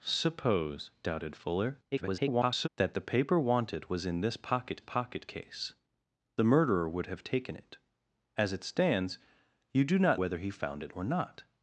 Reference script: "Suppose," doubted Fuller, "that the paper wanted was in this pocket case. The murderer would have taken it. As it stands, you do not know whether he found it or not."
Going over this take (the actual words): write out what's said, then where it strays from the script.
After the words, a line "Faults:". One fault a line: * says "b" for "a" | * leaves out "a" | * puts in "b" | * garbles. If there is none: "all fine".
"Suppose," doubted Fuller, [garbled] "that the paper wanted was in this pocket pocket case. The murderer would have taken it. As it stands, you do not whether he found it or not."
Faults:
* garbles
* puts in "pocket"
* leaves out "know"